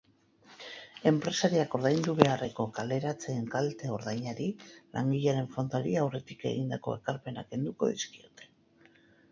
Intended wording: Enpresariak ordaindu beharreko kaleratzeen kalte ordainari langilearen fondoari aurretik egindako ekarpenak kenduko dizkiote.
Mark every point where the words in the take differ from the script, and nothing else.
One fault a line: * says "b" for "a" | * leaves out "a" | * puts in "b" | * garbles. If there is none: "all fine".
all fine